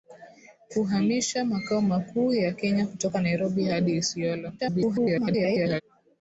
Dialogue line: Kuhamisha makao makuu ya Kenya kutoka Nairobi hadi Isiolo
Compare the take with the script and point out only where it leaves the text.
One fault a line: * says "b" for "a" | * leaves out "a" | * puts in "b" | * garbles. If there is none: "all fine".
* garbles